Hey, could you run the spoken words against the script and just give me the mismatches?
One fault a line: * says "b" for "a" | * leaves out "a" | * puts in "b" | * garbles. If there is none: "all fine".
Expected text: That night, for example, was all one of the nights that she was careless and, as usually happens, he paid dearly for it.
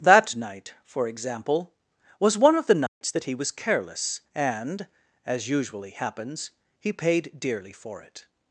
* leaves out "all"
* says "he" for "she"